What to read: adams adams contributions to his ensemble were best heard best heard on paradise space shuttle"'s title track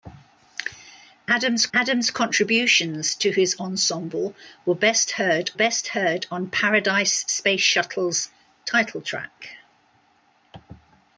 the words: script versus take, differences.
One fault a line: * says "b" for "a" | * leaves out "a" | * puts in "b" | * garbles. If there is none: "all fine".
all fine